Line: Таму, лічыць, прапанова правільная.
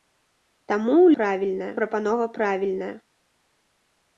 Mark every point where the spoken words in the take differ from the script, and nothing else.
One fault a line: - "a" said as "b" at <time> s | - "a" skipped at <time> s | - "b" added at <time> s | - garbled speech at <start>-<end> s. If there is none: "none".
- "лічыць" said as "правільная" at 1.2 s